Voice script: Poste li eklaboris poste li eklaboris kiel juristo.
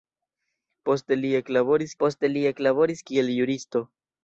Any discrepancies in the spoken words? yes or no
no